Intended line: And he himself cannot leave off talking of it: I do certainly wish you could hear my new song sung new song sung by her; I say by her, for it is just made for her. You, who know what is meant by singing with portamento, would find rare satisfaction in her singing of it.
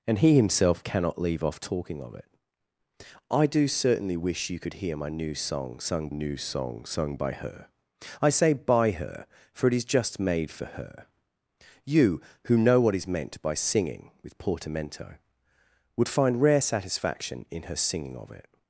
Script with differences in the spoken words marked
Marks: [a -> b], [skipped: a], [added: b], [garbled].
And he himself cannot leave off talking of it: I do certainly wish you could hear my new song sung new song sung by her; I say by her, for it is just made for her. You, who know what is meant by singing with portamento, would find rare satisfaction in her singing of it.